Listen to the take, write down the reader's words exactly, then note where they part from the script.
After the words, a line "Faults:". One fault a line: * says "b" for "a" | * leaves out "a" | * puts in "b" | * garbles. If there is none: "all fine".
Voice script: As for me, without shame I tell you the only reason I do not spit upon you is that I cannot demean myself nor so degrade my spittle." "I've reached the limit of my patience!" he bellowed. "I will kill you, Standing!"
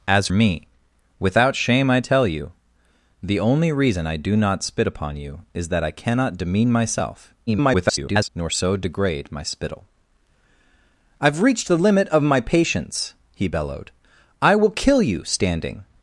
As me, without shame I tell you the only reason I do not spit upon you is that I cannot demean myself [garbled] nor so degrade my spittle." "I've reached the limit of my patience!" he bellowed. "I will kill you, Standing!"
Faults:
* leaves out "for"
* garbles